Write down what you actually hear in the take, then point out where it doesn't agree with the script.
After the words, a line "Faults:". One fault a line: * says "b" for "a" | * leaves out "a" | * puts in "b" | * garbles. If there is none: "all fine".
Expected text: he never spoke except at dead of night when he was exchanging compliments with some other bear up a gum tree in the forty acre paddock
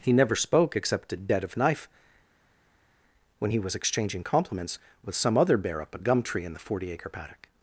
he never spoke except at dead of knife when he was exchanging compliments with some other bear up a gum tree in the forty acre paddock
Faults:
* says "knife" for "night"